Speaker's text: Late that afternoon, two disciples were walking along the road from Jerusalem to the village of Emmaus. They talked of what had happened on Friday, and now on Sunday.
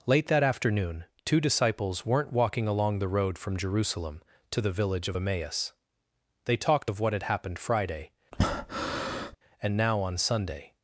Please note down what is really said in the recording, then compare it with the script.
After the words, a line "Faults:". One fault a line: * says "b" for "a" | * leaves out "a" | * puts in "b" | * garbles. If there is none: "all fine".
Late that afternoon, two disciples weren't walking along the road from Jerusalem to the village of Emmaus. They talked of what had happened Friday, and now on Sunday.
Faults:
* says "weren't" for "were"
* leaves out "on"